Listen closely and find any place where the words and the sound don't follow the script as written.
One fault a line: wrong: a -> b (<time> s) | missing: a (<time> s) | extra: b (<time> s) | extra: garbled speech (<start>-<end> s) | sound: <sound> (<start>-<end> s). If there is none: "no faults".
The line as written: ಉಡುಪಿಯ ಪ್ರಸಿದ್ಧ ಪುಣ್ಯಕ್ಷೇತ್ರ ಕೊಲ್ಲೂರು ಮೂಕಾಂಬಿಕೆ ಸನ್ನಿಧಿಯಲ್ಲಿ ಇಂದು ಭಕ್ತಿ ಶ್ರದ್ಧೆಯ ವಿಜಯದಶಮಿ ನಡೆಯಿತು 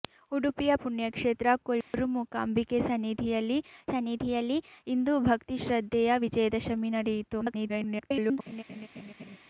missing: ಪ್ರಸಿದ್ಧ (0.7 s)
sound: dropout (1.8-1.9 s)
extra: ಸನ್ನಿಧಿಯಲ್ಲಿ (3.9 s)
extra: garbled speech (7.4-8.4 s)
sound: laugh (8.5-9.4 s)